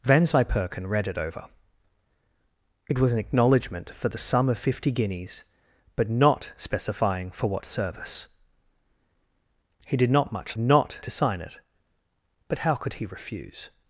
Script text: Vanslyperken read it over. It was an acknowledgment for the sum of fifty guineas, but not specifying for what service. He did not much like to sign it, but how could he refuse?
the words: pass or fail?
fail